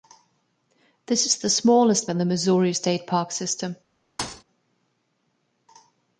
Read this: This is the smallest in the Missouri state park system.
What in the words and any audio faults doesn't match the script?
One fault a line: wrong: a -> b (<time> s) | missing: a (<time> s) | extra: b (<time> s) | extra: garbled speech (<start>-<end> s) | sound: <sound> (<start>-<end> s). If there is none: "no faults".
sound: thud (4.2-4.4 s)